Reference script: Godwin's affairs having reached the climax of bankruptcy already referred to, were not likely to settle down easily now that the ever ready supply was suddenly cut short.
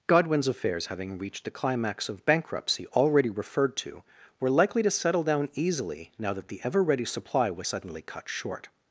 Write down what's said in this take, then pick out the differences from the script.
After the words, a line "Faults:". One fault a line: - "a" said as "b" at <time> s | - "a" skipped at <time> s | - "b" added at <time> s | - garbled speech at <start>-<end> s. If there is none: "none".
Godwin's affairs having reached the climax of bankruptcy already referred to, were likely to settle down easily now that the ever ready supply was suddenly cut short.
Faults:
- "not" skipped at 4.5 s